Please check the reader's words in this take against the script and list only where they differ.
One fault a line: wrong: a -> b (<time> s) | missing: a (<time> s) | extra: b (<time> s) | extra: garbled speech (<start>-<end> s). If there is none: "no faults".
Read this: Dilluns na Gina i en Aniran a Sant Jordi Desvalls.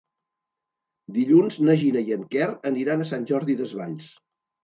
extra: Quer (2.3 s)